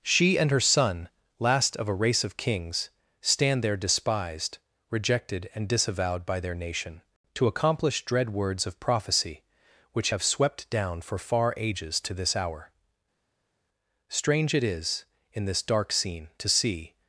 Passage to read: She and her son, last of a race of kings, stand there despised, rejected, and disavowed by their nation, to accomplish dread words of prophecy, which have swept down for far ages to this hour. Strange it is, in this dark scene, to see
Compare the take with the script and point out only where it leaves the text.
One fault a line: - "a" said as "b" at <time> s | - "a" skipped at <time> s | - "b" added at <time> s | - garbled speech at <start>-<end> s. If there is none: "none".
none